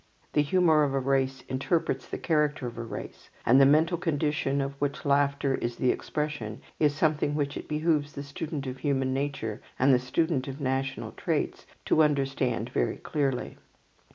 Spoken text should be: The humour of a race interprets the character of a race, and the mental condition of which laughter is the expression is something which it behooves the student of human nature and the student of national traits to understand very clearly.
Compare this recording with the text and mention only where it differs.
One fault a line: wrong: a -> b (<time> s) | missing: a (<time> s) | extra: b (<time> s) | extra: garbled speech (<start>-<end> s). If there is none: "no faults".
no faults